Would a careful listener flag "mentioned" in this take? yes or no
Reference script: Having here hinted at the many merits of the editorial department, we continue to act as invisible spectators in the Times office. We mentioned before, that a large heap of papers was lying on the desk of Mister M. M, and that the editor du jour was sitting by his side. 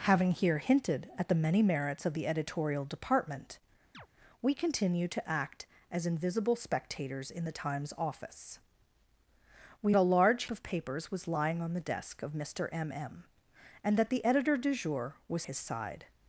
yes